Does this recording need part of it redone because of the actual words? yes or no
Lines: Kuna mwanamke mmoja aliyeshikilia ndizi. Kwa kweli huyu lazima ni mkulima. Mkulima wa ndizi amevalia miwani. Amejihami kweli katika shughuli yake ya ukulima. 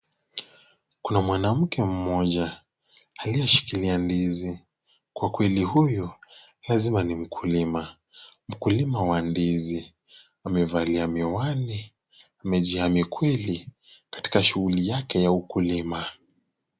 no